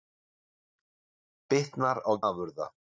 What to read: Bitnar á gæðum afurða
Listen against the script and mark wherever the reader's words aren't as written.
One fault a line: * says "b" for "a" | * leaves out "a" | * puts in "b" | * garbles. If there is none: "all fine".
* leaves out "gæðum"